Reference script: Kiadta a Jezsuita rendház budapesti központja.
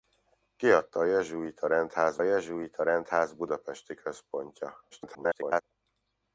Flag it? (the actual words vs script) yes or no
yes